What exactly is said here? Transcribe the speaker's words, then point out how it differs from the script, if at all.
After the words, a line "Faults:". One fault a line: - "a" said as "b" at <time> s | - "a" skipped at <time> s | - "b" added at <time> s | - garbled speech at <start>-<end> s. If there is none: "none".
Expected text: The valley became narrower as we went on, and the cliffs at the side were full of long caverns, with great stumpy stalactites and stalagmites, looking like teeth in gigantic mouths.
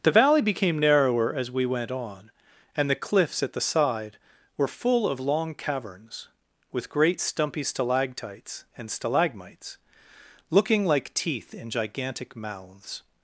The valley became narrower as we went on, and the cliffs at the side were full of long caverns, with great stumpy stalactites and stalagmites, looking like teeth in gigantic mouths.
Faults:
none